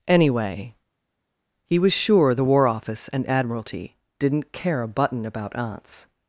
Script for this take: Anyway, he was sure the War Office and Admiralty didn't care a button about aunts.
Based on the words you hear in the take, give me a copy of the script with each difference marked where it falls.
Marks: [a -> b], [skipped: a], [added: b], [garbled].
Anyway, he was sure the War Office and Admiralty didn't care a button about aunts.